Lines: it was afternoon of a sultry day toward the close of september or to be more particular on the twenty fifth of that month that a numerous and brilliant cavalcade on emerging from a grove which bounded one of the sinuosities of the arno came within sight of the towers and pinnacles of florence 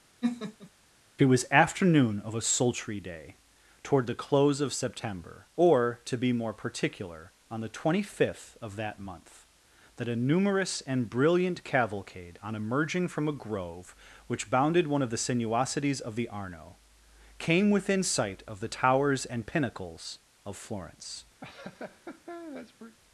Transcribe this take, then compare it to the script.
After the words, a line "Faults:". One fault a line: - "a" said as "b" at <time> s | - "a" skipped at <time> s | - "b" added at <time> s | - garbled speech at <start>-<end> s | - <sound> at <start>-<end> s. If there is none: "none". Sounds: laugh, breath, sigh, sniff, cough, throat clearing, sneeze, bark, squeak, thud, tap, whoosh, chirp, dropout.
it was afternoon of a sultry day toward the close of september or to be more particular on the twenty fifth of that month that a numerous and brilliant cavalcade on emerging from a grove which bounded one of the sinuosities of the arno came within sight of the towers and pinnacles of florence
Faults:
- laugh at 0.2-0.7 s
- laugh at 21.4-23.0 s